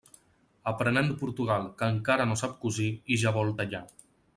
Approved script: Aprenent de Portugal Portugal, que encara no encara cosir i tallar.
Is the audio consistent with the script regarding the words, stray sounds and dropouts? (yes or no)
no